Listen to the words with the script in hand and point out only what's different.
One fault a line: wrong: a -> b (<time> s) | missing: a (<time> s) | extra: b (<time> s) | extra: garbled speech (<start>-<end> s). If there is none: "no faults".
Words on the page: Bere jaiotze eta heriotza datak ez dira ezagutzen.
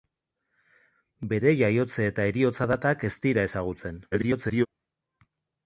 extra: garbled speech (4.1-4.7 s)